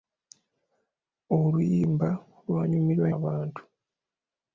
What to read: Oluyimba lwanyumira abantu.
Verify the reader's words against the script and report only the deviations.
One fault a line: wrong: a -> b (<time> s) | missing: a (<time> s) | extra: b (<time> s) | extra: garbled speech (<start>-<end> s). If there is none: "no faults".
no faults